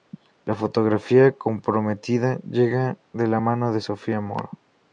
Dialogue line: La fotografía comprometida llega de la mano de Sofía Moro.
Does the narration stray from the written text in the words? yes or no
no